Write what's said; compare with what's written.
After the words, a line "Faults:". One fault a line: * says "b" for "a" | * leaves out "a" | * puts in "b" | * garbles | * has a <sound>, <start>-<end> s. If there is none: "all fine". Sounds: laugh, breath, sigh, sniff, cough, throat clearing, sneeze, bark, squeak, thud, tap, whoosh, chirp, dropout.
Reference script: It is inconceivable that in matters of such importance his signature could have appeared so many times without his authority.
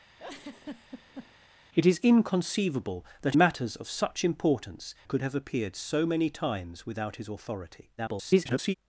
It is inconceivable that matters of such importance could have appeared so many times without his authority. [garbled]
Faults:
* has a laugh, 0.2-1.5 s
* leaves out "in"
* leaves out "his signature"
* garbles